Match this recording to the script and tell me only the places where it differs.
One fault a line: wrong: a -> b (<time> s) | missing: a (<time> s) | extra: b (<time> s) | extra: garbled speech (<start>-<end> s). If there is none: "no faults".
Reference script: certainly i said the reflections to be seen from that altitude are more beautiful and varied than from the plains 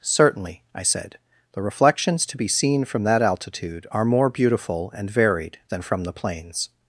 no faults